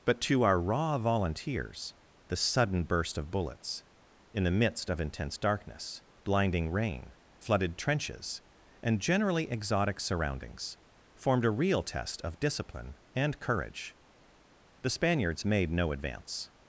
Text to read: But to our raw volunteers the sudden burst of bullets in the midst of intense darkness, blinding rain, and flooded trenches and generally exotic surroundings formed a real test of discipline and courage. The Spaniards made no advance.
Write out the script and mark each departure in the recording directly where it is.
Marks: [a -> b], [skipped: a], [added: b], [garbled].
But to our raw volunteers the sudden burst of bullets in the midst of intense darkness, blinding rain, [skipped: and] flooded trenches and generally exotic surroundings formed a real test of discipline and courage. The Spaniards made no advance.